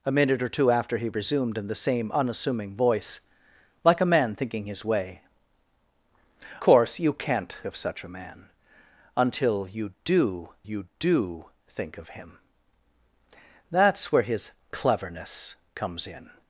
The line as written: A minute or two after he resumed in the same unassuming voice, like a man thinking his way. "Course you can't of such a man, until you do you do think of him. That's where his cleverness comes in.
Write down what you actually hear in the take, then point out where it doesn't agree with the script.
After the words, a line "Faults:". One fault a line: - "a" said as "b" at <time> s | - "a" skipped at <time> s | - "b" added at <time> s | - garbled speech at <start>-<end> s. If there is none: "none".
A minute or two after he resumed in the same unassuming voice, like a man thinking his way. "Course you can't of such a man, until you do you do think of him. That's where his cleverness comes in.
Faults:
none